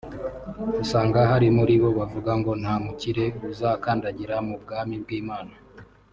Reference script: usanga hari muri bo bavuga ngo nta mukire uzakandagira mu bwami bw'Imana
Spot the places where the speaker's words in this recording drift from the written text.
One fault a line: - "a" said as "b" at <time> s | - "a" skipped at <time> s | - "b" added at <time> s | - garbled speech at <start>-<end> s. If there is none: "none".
none